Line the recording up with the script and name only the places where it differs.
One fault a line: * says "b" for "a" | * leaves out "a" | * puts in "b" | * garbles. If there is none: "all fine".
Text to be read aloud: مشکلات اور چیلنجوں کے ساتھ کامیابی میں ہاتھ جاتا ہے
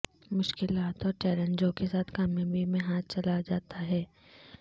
* puts in "چلا"